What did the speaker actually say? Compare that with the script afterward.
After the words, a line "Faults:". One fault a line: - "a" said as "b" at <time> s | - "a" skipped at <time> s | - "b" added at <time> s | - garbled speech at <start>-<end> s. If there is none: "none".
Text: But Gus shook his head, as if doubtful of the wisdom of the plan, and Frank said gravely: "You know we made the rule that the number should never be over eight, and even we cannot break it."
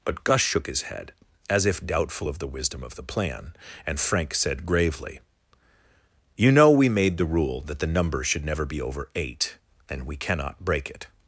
But Gus shook his head, as if doubtful of the wisdom of the plan, and Frank said gravely: "You know we made the rule that the number should never be over eight, and we cannot break it."
Faults:
- "even" skipped at 10.0 s